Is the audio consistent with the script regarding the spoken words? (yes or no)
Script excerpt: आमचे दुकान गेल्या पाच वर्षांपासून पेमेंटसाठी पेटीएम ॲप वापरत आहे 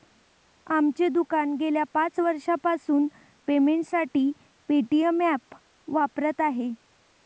yes